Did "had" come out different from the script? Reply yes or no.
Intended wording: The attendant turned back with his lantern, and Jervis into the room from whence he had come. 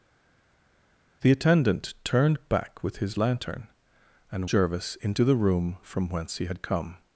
no